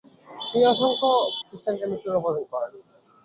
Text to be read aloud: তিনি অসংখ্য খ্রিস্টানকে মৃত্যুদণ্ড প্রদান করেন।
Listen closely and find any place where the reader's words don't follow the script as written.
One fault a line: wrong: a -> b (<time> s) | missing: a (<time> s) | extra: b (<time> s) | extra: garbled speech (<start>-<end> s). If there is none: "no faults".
no faults